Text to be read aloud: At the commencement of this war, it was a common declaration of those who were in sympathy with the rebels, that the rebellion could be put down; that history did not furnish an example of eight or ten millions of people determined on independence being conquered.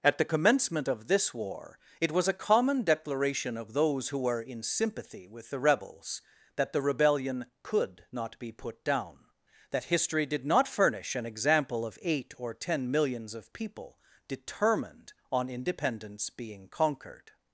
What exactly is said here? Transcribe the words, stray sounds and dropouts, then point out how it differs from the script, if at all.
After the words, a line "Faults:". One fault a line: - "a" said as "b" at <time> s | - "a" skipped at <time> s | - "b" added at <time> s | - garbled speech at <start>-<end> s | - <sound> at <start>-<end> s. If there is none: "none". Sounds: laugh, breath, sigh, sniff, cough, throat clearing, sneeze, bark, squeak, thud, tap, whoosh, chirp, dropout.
At the commencement of this war, it was a common declaration of those who were in sympathy with the rebels, that the rebellion could not be put down; that history did not furnish an example of eight or ten millions of people determined on independence being conquered.
Faults:
- "not" added at 8.1 s